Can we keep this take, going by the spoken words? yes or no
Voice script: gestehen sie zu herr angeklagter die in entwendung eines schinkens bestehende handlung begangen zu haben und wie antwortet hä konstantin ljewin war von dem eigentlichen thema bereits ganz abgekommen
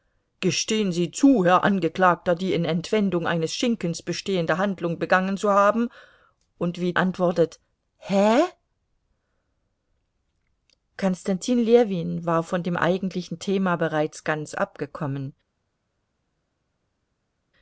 yes